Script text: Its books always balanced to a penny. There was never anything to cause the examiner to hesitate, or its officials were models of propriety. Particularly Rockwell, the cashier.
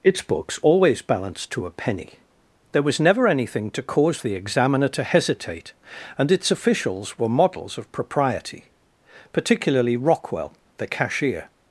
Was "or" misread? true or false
true